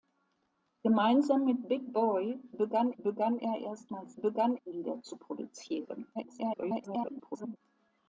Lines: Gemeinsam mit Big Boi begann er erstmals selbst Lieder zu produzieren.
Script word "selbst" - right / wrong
wrong